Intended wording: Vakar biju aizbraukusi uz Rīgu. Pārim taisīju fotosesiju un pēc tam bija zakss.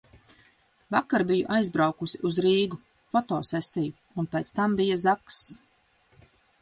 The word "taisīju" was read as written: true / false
false